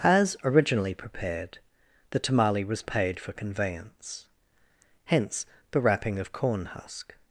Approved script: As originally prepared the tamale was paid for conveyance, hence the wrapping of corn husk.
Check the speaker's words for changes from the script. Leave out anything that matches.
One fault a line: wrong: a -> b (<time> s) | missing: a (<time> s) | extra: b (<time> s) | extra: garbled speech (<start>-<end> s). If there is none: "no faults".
no faults